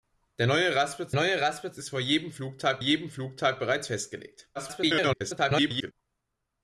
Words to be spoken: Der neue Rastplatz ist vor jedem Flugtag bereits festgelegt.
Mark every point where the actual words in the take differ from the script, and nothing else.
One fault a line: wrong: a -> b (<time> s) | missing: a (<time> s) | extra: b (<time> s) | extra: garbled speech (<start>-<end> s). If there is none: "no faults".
extra: neue Rastplatz (1.1 s)
extra: jedem Flugtag (2.8 s)
extra: garbled speech (4.5-5.9 s)